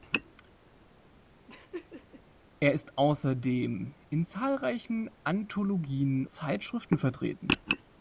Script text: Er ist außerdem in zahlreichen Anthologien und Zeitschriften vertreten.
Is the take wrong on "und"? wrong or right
wrong